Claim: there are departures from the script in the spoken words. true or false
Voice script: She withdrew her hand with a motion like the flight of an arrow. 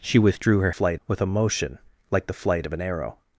true